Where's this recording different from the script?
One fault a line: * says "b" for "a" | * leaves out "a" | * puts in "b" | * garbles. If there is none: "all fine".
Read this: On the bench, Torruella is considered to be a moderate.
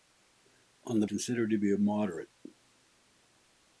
* leaves out "bench Torruella is"